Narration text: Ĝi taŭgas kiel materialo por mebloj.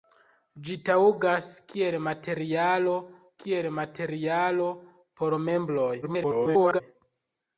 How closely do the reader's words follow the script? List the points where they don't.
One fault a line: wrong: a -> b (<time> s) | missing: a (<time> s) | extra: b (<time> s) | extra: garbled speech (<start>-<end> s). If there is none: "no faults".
extra: kiel materialo (3.4 s)
extra: garbled speech (6.0-6.8 s)